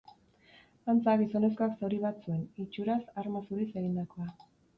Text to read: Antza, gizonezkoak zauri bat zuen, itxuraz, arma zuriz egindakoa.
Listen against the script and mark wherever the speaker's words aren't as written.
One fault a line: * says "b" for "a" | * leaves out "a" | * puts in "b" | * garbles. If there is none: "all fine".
all fine